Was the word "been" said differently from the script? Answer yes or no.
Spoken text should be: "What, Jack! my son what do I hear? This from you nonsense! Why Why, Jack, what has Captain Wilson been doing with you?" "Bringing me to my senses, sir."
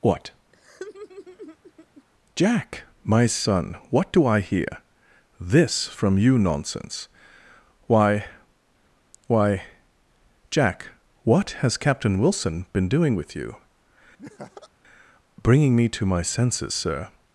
no